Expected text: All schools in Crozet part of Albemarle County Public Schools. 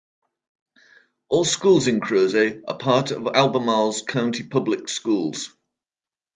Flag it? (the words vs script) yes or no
yes